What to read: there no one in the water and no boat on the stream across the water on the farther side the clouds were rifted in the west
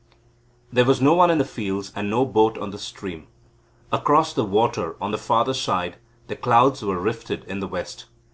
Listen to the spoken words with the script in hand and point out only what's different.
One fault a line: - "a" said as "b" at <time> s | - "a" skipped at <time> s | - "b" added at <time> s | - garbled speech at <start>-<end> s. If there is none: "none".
- "was" added at 0.8 s
- "water" said as "fields" at 1.4 s